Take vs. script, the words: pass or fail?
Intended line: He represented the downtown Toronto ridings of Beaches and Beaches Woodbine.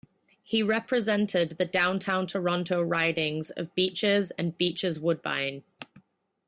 pass